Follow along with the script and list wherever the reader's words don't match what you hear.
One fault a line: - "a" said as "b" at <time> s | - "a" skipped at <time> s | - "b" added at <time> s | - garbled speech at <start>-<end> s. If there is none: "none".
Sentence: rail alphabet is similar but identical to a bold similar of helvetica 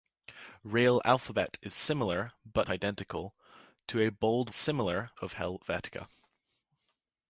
none